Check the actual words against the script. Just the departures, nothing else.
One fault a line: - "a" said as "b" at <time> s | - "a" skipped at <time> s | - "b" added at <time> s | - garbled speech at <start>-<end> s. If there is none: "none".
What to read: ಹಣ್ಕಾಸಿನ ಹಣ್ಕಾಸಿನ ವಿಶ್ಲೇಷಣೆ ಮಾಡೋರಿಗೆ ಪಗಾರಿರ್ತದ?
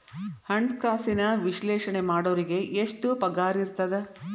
- "ಹಣ್ಕಾಸಿನ" skipped at 1.2 s
- "ಎಷ್ಟ್" added at 2.8 s